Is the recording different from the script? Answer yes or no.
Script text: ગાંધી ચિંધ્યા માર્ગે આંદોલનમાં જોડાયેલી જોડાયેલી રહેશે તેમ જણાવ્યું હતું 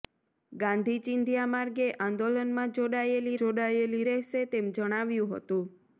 no